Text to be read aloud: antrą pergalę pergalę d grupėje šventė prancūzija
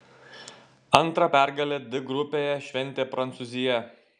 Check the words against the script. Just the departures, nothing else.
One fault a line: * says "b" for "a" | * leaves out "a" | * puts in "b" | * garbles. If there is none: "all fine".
* leaves out "pergalę"